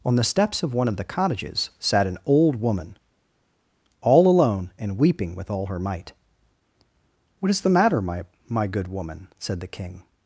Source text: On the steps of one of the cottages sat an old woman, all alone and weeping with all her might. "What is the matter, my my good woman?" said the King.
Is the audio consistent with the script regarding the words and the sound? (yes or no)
yes